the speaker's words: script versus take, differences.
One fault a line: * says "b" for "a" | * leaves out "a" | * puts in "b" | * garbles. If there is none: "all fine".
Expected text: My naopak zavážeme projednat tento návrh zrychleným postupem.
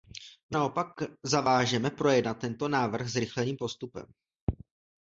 all fine